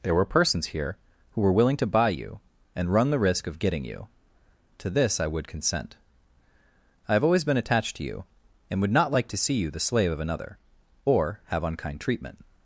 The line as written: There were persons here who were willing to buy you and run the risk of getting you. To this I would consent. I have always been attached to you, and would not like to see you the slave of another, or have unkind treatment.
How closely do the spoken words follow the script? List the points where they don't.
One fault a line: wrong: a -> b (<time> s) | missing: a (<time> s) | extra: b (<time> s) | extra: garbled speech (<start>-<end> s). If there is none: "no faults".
no faults